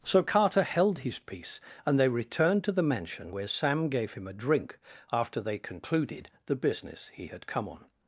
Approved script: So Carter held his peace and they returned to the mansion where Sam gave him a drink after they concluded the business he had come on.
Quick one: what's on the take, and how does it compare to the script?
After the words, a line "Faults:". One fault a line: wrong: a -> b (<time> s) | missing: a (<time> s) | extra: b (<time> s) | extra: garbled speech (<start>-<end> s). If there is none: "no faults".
So Carter held his peace and they returned to the mansion where Sam gave him a drink after they concluded the business he had come on.
Faults:
no faults